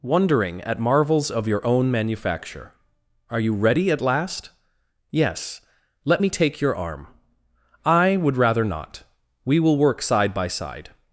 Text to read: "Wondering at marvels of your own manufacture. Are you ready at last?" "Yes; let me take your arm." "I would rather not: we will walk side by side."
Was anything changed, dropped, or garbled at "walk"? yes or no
yes